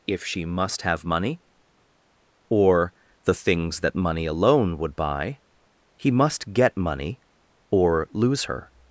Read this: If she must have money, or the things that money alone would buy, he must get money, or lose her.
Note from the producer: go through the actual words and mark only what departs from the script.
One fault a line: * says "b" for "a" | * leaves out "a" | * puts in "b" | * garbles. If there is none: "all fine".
all fine